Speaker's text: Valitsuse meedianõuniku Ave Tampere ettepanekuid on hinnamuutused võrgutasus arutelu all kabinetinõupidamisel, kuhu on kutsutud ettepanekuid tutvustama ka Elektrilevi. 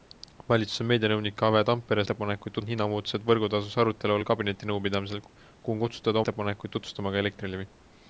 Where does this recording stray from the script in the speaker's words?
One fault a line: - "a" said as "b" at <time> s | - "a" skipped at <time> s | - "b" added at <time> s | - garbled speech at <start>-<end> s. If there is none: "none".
none